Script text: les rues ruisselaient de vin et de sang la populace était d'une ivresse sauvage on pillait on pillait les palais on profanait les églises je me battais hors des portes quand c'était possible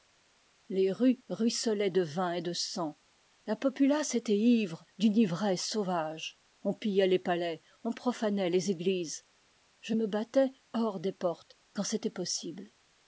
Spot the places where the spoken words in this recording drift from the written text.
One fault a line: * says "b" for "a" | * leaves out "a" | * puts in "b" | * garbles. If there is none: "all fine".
* puts in "ivre"
* leaves out "on pillait"